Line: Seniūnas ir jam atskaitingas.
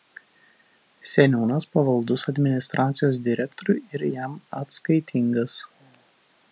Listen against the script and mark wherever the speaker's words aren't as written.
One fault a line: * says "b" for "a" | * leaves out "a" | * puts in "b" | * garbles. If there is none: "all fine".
* puts in "pavaldus administracijos direktoriui"